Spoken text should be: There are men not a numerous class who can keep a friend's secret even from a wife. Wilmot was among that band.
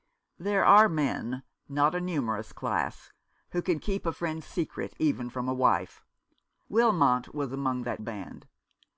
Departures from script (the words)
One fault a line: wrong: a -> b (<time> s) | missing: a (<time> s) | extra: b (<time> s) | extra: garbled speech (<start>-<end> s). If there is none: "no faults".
no faults